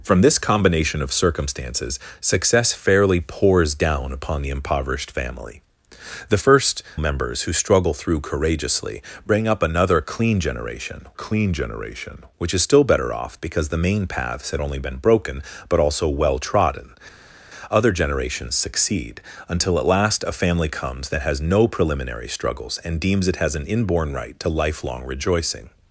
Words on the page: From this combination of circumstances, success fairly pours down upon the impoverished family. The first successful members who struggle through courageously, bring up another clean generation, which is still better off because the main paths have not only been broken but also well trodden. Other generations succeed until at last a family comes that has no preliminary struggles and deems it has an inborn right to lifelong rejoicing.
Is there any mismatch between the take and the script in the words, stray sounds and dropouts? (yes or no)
yes